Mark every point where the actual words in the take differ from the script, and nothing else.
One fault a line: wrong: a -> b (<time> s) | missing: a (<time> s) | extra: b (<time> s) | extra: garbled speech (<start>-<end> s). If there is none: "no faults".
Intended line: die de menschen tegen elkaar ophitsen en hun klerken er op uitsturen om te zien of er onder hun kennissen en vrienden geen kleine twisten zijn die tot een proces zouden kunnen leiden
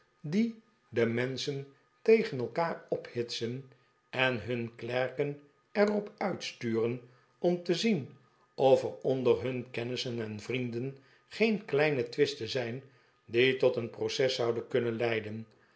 no faults